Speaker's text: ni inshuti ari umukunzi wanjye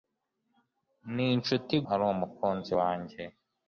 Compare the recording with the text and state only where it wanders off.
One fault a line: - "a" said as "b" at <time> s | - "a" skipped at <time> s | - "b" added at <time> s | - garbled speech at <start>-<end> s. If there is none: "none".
none